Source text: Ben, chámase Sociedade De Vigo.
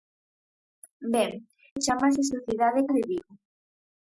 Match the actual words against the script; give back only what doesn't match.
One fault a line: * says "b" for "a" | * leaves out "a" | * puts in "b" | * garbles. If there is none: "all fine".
all fine